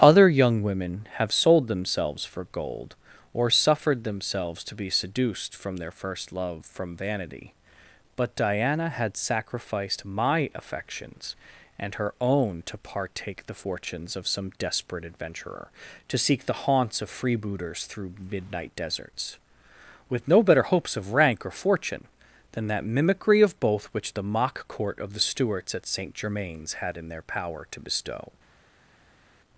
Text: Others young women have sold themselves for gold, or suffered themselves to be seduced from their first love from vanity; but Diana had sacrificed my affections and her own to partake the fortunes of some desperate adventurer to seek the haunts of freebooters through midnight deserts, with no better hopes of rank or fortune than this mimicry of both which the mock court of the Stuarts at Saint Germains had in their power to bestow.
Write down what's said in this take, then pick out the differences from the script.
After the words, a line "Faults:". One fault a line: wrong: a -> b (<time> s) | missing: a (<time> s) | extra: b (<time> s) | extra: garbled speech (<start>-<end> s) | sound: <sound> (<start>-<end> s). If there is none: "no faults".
Other young women have sold themselves for gold, or suffered themselves to be seduced from their first love from vanity; but Diana had sacrificed my affections and her own to partake the fortunes of some desperate adventurer to seek the haunts of freebooters through midnight deserts, with no better hopes of rank or fortune than that mimicry of both which the mock court of the Stuarts at Saint Germains had in their power to bestow.
Faults:
wrong: Others -> Other (0.0 s)
wrong: this -> that (22.7 s)